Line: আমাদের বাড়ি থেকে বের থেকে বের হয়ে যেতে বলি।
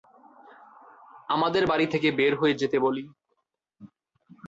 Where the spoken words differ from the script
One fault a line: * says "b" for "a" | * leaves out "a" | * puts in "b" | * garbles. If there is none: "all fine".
* leaves out "থেকে বের"